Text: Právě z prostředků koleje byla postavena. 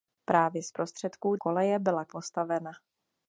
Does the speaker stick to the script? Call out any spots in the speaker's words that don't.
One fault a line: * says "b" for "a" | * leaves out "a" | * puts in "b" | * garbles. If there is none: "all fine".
all fine